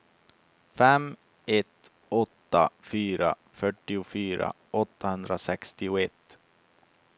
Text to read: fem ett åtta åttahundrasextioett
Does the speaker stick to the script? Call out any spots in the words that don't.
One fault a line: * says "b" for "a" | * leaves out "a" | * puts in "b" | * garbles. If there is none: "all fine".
* puts in "fyra fyrtiofyra"